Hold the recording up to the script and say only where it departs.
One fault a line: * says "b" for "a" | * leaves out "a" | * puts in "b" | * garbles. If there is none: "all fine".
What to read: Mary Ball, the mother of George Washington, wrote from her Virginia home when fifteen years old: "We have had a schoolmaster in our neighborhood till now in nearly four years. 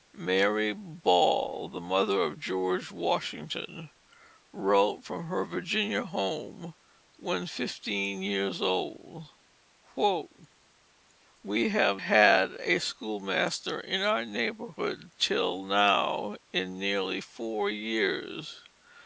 all fine